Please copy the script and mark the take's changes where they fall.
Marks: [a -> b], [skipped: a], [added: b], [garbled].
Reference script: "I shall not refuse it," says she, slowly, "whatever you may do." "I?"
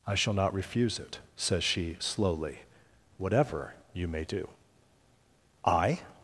"I shall not refuse it," says she, slowly, "whatever you may do." "I?"